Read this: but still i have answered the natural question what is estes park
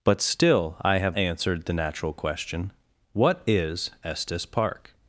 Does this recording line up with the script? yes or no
yes